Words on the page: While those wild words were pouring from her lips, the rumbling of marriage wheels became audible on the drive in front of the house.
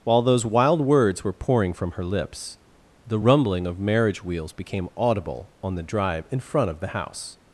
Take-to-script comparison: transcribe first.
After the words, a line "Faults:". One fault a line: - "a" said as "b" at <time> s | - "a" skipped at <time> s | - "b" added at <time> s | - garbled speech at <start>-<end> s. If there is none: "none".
While those wild words were pouring from her lips, the rumbling of marriage wheels became audible on the drive in front of the house.
Faults:
none